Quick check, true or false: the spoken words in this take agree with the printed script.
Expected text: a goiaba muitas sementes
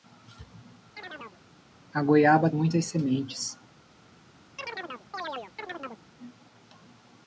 true